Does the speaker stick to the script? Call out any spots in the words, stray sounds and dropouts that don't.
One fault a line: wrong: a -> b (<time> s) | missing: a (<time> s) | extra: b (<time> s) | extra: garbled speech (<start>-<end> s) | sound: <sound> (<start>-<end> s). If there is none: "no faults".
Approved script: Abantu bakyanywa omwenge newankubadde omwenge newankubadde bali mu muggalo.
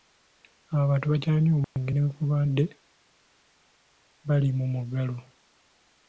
sound: dropout (1.6-1.8 s)
missing: omwenge newankubadde (2.6 s)